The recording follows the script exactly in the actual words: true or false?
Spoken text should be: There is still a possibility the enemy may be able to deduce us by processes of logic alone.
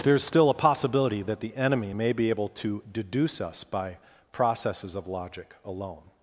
false